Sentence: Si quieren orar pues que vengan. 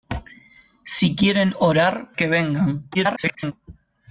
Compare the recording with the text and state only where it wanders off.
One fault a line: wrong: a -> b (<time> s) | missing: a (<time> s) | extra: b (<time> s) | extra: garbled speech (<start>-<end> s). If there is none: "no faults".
missing: pues (2.1 s)
extra: garbled speech (2.9-3.5 s)